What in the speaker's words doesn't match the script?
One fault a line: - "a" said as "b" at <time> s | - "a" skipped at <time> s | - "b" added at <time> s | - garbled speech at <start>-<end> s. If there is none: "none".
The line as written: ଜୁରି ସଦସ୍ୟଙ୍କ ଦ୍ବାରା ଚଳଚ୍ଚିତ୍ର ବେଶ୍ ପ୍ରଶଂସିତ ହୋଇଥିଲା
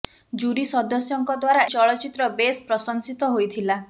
none